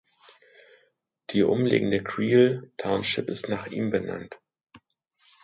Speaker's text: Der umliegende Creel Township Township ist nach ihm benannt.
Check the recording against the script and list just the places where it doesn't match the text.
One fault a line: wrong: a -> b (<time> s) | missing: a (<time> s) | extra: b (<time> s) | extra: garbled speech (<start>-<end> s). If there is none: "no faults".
wrong: Der -> Die (1.3 s)
missing: Township (3.3 s)